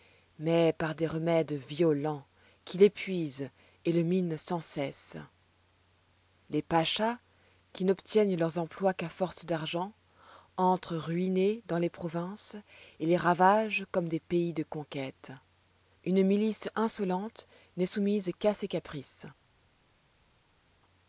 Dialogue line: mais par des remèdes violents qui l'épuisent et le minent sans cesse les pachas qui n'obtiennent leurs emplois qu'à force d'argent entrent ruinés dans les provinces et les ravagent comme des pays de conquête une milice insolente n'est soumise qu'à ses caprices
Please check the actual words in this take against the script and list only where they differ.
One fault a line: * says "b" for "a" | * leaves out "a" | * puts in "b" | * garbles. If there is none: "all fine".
all fine